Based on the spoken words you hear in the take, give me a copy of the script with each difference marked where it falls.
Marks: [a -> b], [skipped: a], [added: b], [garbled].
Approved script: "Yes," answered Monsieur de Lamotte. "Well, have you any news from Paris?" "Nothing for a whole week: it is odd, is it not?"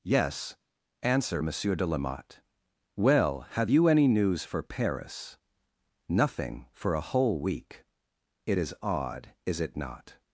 "Yes," [answered -> answer] Monsieur de Lamotte. "Well, have you any news [from -> for] Paris?" "Nothing for a whole week: it is odd, is it not?"